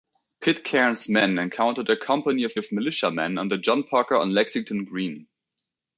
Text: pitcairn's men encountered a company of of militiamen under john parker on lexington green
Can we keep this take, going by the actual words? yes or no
yes